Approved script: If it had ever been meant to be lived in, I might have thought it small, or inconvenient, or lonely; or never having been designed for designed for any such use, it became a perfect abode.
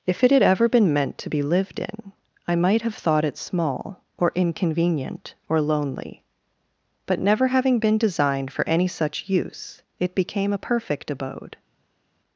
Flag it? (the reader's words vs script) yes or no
yes